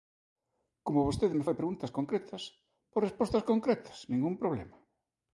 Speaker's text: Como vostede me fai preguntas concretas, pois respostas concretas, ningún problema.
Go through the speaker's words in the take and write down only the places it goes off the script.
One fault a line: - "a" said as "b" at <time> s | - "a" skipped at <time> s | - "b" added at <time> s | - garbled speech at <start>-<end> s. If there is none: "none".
none